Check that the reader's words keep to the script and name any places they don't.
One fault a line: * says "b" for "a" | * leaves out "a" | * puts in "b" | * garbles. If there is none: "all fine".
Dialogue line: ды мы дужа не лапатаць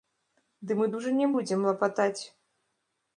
* puts in "будзем"